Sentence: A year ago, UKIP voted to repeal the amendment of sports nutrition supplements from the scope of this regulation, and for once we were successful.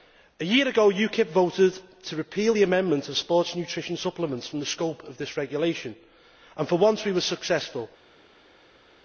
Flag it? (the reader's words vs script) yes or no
no